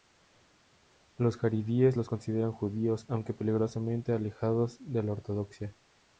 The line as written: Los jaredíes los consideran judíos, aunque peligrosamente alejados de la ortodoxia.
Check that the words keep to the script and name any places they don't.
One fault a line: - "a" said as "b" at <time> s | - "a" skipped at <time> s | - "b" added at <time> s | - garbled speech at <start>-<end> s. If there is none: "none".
none